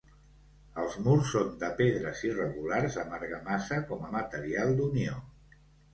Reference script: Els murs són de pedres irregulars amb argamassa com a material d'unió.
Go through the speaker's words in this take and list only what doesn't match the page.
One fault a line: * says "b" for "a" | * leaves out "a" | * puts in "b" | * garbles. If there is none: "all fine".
all fine